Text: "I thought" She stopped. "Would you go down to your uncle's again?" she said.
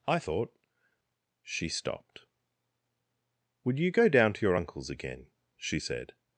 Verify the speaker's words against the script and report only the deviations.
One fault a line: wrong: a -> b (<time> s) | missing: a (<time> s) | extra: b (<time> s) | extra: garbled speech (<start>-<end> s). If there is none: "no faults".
no faults